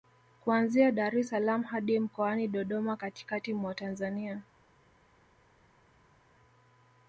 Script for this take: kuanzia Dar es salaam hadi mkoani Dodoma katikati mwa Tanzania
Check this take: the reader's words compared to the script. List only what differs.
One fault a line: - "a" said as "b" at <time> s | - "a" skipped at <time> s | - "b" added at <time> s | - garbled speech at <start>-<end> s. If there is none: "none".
none